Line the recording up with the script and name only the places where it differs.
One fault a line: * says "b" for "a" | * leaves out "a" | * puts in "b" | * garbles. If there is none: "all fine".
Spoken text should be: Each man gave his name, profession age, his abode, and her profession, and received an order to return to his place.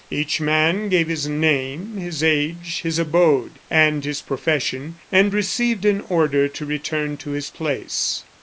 * says "his" for "profession"
* says "his" for "her"